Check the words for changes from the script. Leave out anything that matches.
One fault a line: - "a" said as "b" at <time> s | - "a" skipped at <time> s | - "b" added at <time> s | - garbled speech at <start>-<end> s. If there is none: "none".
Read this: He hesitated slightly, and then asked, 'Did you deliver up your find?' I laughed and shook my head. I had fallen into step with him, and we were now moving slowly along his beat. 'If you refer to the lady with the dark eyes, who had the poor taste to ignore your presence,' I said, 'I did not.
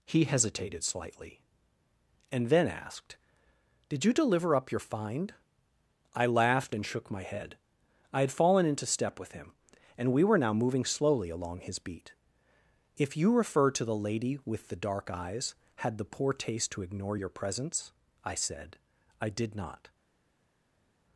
- "who" skipped at 15.5 s